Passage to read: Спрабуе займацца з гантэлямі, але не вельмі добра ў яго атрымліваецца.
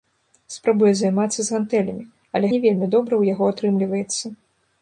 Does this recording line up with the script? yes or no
yes